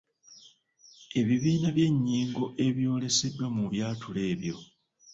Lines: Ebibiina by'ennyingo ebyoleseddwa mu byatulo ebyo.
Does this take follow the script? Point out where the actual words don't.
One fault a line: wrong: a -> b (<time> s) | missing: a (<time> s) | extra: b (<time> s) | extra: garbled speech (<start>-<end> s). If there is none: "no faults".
no faults